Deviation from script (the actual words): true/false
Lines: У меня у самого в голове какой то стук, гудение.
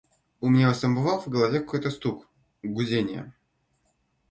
false